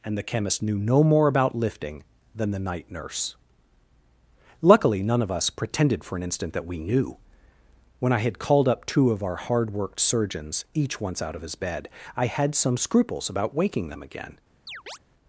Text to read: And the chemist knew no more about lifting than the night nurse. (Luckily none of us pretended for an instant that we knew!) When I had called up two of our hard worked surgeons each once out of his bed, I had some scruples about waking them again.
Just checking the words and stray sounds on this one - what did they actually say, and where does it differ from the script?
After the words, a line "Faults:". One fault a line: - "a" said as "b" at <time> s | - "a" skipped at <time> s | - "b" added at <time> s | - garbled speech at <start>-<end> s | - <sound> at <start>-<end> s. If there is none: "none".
And the chemist knew no more about lifting than the night nurse. (Luckily none of us pretended for an instant that we knew!) When I had called up two of our hard worked surgeons each once out of his bed, I had some scruples about waking them again.
Faults:
- chirp at 14.7-15.0 s